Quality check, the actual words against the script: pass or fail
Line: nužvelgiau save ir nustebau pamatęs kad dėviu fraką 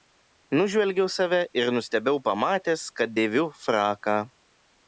pass